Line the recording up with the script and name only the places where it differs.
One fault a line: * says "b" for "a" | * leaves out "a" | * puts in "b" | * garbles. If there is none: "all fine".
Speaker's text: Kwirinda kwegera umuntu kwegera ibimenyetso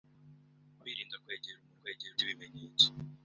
all fine